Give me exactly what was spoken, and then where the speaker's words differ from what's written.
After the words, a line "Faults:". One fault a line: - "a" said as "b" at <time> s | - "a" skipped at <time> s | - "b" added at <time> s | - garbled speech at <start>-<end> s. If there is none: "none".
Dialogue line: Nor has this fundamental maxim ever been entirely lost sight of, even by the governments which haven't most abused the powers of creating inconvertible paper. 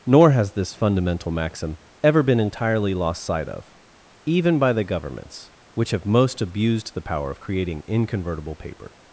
Nor has this fundamental maxim ever been entirely lost sight of, even by the governments which have most abused the power of creating inconvertible paper.
Faults:
- "haven't" said as "have" at 5.9 s
- "powers" said as "power" at 7.0 s